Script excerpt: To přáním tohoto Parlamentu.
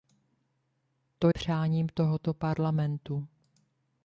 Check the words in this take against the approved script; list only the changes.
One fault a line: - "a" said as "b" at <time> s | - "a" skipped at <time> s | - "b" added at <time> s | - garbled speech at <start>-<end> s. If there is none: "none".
none